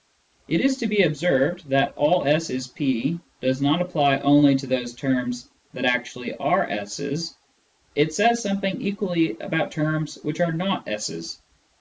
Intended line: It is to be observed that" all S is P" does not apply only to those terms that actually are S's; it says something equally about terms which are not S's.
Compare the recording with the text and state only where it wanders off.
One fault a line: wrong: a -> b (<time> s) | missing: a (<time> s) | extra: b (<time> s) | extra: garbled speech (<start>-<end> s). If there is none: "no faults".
no faults